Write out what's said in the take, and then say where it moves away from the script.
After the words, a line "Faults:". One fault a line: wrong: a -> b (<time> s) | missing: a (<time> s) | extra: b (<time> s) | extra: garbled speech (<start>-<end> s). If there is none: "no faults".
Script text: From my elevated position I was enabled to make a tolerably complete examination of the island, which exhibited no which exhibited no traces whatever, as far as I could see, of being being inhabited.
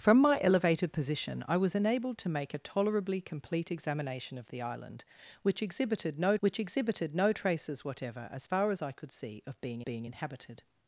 From my elevated position I was enabled to make a tolerably complete examination of the island, which exhibited no which exhibited no traces whatever, as far as I could see, of being being inhabited.
Faults:
no faults